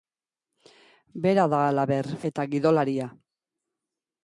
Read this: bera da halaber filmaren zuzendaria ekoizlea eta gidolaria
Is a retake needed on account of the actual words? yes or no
yes